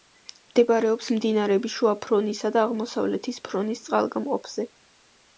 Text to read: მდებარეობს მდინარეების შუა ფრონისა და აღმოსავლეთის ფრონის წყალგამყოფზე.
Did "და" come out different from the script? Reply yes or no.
no